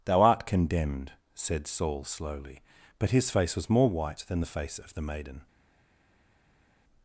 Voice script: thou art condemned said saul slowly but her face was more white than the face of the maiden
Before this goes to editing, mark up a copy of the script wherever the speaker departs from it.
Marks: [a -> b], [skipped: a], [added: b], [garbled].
thou art condemned said saul slowly but [her -> his] face was more white than the face of the maiden